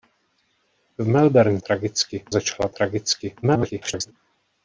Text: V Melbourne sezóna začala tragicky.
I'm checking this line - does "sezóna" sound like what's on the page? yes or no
no